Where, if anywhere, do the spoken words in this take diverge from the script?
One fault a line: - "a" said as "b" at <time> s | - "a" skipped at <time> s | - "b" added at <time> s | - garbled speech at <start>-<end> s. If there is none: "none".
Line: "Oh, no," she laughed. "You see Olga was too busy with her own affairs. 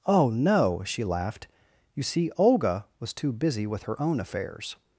none